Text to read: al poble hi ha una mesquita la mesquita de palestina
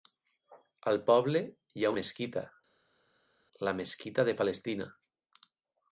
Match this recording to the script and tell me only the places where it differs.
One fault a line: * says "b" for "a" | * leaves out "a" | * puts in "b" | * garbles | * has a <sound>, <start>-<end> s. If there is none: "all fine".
* leaves out "una"